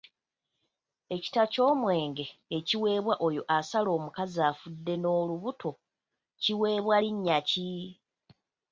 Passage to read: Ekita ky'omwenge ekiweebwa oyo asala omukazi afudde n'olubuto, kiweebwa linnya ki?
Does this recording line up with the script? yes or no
yes